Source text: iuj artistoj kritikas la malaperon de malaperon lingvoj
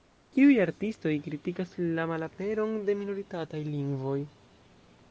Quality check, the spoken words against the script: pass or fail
fail